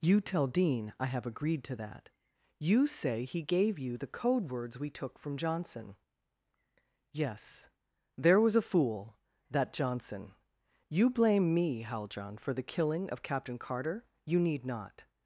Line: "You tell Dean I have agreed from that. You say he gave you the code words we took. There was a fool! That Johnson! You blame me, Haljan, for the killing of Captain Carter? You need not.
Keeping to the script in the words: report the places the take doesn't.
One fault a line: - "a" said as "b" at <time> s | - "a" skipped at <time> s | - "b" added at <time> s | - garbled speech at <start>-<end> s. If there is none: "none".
- "from" said as "to" at 1.6 s
- "from Johnson Yes" added at 5.2 s